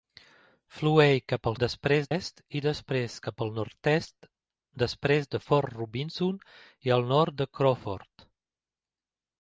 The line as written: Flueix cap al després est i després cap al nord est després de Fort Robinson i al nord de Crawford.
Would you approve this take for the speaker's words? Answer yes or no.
yes